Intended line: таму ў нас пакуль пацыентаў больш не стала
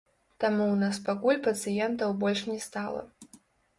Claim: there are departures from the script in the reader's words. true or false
false